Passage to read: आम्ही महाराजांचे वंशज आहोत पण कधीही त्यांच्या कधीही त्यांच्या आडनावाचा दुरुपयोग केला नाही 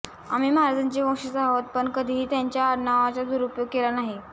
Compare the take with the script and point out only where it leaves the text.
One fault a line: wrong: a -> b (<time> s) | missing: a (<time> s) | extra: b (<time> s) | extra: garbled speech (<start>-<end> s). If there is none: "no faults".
missing: कधीही त्यांच्या (2.6 s)